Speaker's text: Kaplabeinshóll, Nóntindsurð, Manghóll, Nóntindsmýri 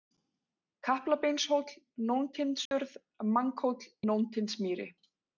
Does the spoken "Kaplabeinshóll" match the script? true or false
true